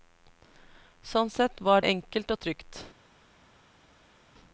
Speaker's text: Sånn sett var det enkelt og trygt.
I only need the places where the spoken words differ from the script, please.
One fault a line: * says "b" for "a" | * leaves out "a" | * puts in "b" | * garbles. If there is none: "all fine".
* leaves out "det"